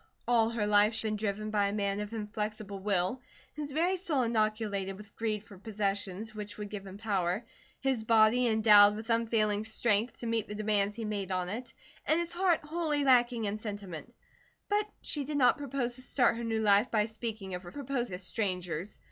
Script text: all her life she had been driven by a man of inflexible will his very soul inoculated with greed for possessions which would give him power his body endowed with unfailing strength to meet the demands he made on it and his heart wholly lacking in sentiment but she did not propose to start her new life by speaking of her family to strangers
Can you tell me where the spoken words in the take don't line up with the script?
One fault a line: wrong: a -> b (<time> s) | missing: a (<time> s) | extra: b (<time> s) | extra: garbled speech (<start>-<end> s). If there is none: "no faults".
missing: had (1.1 s)
wrong: family -> propose (17.7 s)